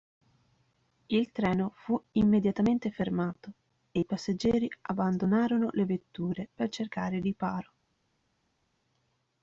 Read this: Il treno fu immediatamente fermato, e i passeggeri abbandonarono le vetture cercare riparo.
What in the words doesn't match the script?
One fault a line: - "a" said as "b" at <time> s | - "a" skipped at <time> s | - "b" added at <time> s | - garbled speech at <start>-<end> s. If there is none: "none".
- "per" added at 6.5 s